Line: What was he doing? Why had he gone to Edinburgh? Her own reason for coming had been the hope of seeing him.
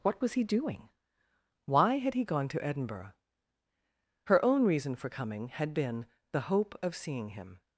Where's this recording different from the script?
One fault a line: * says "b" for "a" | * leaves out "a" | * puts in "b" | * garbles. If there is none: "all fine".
all fine